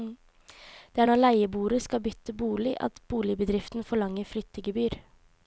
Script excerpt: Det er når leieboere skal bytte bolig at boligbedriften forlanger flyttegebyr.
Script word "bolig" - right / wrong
right